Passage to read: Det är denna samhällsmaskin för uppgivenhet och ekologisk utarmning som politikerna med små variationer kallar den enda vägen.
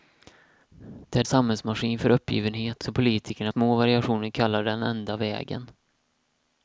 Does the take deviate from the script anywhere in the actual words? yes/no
yes